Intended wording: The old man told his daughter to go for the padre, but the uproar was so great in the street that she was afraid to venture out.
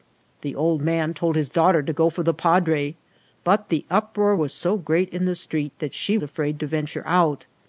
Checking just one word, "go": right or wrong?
right